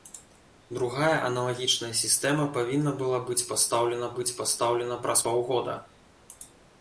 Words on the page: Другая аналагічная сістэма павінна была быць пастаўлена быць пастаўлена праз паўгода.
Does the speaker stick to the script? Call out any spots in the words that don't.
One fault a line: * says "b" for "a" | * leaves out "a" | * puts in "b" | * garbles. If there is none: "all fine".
all fine